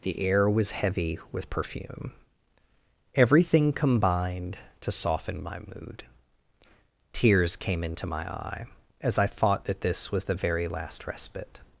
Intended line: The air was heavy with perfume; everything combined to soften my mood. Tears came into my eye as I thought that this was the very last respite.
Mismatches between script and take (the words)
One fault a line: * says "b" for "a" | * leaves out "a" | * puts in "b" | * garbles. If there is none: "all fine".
all fine